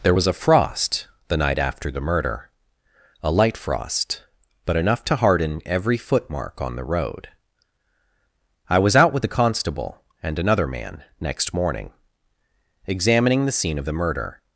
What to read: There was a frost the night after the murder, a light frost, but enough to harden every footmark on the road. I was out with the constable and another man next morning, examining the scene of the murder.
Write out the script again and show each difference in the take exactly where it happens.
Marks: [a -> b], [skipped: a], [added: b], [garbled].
There was a frost the night after the murder, a light frost, but enough to harden every footmark on the road. I was out with the constable and another man next morning, examining the scene of the murder.